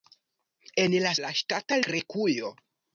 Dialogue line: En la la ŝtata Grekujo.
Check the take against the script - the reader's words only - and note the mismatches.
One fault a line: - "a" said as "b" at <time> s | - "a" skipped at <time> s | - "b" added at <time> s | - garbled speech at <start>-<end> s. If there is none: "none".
none